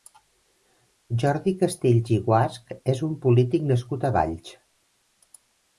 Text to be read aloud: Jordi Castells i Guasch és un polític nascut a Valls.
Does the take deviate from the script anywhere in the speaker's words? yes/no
no